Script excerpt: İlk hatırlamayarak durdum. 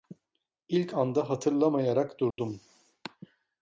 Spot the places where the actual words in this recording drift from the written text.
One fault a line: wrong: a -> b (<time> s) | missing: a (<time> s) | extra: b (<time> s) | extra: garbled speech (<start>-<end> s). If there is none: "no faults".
extra: anda (0.9 s)